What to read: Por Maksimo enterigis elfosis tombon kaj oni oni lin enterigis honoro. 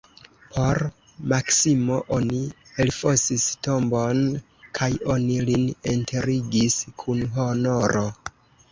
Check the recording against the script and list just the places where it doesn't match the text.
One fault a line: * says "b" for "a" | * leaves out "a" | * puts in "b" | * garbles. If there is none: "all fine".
* says "oni" for "enterigis"
* leaves out "oni"
* puts in "kun"